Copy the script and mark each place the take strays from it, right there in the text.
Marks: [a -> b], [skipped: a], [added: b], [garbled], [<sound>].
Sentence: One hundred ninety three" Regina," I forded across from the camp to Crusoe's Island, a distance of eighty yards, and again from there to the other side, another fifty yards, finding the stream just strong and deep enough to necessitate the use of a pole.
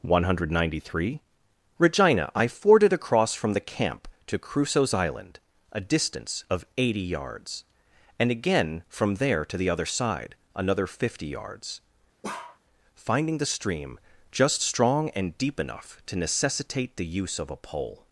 One hundred ninety three" Regina," I forded across from the camp to Crusoe's Island, a distance of eighty yards, and again from there to the other side, another fifty yards, [bark] finding the stream just strong and deep enough to necessitate the use of a pole.